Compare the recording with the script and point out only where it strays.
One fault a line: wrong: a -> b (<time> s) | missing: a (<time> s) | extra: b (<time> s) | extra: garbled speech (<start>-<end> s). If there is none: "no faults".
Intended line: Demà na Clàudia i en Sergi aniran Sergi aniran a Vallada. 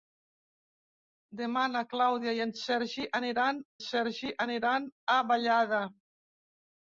no faults